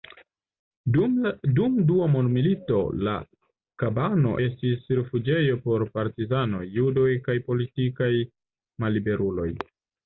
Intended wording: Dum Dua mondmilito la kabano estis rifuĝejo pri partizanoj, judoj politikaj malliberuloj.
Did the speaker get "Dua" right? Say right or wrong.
right